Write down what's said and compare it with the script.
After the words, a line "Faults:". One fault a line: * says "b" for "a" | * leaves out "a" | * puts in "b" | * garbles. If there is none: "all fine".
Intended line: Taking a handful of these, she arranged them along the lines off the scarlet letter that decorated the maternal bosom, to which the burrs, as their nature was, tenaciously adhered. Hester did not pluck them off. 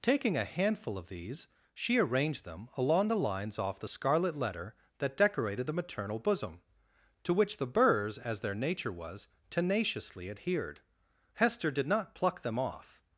Taking a handful of these, she arranged them along the lines off the scarlet letter that decorated the maternal bosom, to which the burrs, as their nature was, tenaciously adhered. Hester did not pluck them off.
Faults:
all fine